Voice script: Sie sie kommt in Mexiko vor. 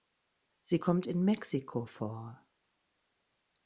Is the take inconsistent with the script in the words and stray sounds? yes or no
yes